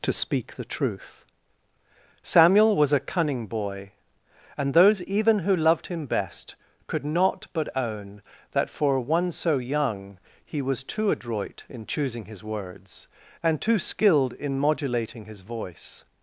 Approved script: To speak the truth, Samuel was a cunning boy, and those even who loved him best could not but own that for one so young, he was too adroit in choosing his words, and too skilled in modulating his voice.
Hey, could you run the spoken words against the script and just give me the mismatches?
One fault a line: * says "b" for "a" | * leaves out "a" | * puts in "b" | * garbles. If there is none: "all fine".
all fine